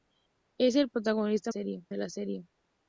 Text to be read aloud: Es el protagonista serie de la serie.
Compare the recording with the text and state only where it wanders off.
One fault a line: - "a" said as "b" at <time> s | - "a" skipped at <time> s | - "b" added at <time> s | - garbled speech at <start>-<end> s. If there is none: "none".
none